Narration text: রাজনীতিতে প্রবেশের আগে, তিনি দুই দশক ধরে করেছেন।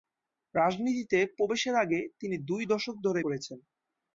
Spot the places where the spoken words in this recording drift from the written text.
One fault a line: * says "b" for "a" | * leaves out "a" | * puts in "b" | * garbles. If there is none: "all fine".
all fine